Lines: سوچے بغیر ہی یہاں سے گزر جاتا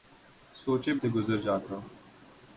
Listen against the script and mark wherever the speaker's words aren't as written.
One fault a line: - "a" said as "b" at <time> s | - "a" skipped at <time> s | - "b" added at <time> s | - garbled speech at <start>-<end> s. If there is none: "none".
- "بغیر ہی یہاں" skipped at 0.9 s